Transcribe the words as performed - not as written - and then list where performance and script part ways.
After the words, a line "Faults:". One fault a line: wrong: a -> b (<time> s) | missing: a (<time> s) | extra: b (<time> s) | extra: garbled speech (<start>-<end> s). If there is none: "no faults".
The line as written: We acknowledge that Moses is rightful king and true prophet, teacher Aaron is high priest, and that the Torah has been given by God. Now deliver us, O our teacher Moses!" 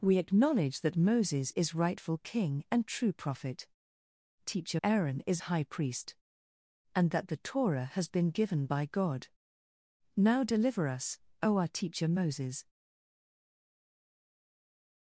We acknowledge that Moses is rightful king and true prophet, teacher Aaron is high priest, and that the Torah has been given by God. Now deliver us, O our teacher Moses!"
Faults:
no faults